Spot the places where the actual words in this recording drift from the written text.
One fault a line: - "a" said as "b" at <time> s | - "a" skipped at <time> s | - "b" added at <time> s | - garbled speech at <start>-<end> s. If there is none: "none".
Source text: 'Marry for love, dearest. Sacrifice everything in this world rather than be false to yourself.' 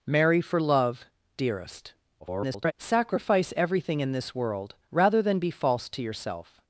- garbled speech at 2.2-2.7 s